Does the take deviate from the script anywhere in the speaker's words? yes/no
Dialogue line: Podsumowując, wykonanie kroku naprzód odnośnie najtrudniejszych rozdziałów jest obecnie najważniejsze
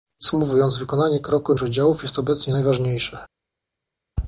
yes